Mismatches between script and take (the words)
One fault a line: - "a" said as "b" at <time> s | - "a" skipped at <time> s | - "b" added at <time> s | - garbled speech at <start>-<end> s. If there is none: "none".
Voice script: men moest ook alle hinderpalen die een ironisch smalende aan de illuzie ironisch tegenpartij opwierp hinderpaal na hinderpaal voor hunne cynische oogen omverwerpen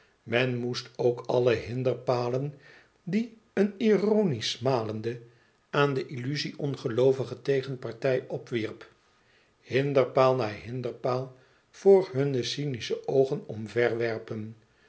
- "ironisch" said as "ongeloovige" at 6.6 s